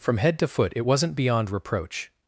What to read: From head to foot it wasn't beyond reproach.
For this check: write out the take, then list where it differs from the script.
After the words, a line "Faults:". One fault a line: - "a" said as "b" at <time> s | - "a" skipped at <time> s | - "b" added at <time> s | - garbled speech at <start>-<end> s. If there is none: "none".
From head to foot it wasn't beyond reproach.
Faults:
none